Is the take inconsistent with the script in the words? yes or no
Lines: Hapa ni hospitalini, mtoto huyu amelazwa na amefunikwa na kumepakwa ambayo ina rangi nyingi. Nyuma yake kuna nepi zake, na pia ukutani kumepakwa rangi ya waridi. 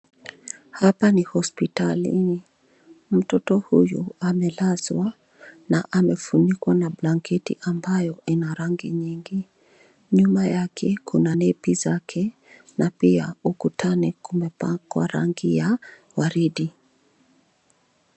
yes